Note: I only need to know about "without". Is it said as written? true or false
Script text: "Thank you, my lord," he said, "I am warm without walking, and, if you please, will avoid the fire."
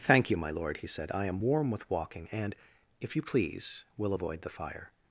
false